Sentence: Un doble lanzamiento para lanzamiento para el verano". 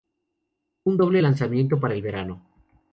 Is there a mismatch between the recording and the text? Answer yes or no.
yes